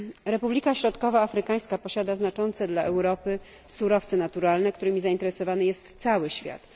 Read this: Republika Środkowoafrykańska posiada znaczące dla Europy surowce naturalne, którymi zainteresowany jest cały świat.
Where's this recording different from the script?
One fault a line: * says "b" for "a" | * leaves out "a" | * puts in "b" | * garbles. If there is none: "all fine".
all fine